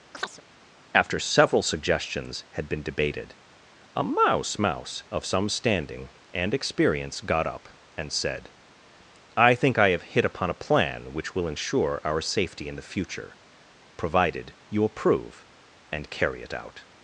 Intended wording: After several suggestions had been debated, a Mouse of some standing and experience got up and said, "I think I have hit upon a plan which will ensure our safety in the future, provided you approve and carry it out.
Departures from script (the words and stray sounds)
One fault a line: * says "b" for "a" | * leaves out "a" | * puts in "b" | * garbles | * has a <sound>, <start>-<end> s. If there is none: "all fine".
* has a chirp, 0.1-0.4 s
* puts in "mouse"